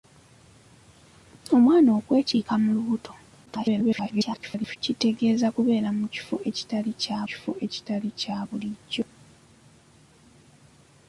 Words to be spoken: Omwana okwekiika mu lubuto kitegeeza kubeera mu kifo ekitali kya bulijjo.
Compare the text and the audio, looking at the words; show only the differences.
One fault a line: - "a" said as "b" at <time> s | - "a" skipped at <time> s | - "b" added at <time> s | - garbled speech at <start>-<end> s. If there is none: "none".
- garbled speech at 3.5-4.8 s
- "kifo ekitali kya" added at 7.3 s